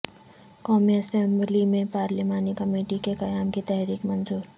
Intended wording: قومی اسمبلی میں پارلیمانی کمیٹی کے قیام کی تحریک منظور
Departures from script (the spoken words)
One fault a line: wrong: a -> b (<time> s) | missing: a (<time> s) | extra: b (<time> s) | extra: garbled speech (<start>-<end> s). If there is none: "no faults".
no faults